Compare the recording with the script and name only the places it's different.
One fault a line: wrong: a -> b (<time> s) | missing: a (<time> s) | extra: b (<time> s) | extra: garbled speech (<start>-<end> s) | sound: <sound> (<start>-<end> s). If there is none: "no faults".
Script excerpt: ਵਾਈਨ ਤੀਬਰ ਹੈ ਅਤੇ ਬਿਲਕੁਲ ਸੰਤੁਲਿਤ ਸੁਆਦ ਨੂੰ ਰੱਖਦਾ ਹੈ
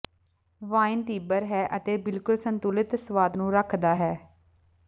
no faults